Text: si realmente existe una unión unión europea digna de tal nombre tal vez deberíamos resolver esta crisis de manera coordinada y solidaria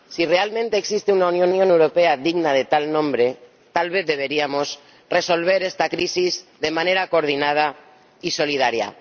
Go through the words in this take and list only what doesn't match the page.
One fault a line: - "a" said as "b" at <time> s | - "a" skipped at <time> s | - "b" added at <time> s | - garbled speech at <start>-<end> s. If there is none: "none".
none